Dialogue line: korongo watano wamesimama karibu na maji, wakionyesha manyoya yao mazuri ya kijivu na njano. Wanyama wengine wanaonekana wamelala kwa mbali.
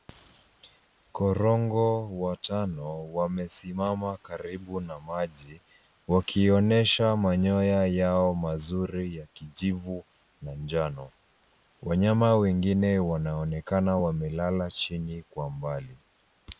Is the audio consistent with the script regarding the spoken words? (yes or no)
no